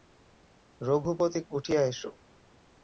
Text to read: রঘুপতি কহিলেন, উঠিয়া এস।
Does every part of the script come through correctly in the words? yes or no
no